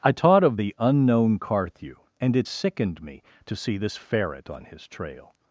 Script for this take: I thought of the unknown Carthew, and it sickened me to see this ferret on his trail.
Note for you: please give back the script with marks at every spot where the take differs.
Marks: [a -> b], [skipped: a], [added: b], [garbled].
I [thought -> taught] of the unknown Carthew, and it sickened me to see this ferret on his trail.